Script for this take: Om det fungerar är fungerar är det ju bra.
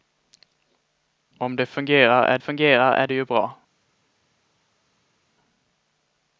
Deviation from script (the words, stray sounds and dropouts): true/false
false